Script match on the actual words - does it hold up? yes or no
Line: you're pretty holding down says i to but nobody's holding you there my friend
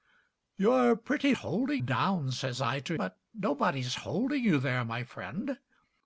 yes